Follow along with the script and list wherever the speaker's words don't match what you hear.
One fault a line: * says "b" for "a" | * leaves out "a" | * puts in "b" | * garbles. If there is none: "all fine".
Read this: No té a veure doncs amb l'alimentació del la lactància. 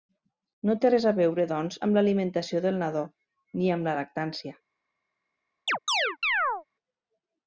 * puts in "res"
* puts in "nadó ni amb"